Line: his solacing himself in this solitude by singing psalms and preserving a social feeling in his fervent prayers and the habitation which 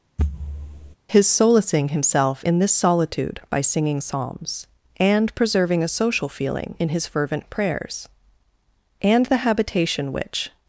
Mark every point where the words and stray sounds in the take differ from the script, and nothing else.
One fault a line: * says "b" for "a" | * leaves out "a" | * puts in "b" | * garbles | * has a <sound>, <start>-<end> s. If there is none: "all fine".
* has a thud, 0.2-1.0 s